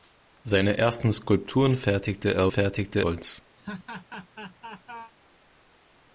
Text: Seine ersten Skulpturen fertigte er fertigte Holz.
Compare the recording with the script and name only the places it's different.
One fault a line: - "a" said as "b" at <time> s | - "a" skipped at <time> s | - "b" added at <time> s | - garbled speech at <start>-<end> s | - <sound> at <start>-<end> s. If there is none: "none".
- laugh at 3.6-5.1 s